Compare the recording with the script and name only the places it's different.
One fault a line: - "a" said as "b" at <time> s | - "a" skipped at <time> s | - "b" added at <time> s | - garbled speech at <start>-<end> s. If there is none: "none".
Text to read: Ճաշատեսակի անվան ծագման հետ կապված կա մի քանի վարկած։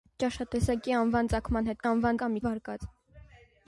- "կապված" said as "անվան" at 1.9 s
- "քանի" skipped at 2.4 s